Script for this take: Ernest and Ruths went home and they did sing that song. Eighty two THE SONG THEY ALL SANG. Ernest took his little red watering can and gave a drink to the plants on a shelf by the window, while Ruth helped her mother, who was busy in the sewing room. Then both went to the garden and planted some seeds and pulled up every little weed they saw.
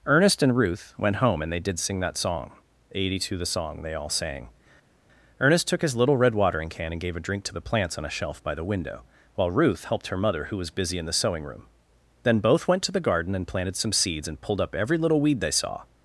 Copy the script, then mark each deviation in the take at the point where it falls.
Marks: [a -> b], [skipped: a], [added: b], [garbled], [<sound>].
Ernest and [Ruths -> Ruth] went home and they did sing that song. Eighty two THE SONG THEY ALL SANG. Ernest took his little red watering can and gave a drink to the plants on a shelf by the window, while Ruth helped her mother, who was busy in the sewing room. Then both went to the garden and planted some seeds and pulled up every little weed they saw.